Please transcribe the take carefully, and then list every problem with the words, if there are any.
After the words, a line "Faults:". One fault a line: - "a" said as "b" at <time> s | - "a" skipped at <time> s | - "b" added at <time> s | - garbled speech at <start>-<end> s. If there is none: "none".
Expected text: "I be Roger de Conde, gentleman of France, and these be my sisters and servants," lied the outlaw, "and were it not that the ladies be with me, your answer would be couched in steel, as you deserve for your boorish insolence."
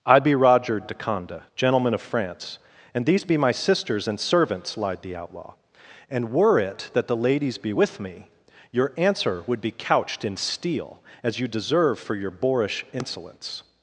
"I be Roger de Conde, gentleman of France, and these be my sisters and servants," lied the outlaw, "and were it that the ladies be with me, your answer would be couched in steel, as you deserve for your boorish insolence."
Faults:
- "not" skipped at 6.9 s